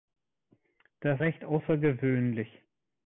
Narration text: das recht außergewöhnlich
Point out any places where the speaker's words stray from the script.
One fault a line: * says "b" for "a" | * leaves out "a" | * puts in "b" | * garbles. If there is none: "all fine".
all fine